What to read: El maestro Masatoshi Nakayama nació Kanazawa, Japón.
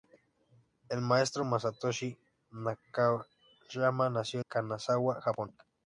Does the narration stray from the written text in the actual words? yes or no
no